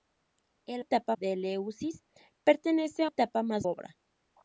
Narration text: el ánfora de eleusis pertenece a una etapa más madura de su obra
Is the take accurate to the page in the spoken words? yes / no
no